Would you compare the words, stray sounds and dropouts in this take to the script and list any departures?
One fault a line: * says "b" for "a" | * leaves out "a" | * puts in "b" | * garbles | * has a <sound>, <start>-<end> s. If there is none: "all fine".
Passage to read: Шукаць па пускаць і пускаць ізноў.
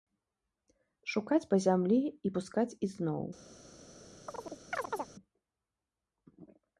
* says "зямлі" for "пускаць"
* has a chirp, 4.3-5.1 s